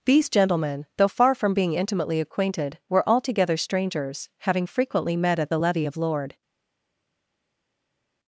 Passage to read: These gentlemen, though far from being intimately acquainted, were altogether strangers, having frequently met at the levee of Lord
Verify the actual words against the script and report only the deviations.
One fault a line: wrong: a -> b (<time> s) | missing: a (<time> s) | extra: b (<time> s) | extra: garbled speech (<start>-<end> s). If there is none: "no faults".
no faults